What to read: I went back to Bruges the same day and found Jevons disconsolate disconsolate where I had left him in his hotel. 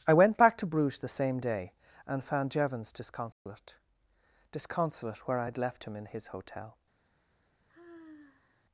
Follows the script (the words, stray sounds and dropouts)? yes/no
no